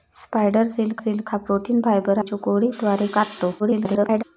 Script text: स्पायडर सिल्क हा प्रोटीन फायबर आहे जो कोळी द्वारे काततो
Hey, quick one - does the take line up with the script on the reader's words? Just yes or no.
no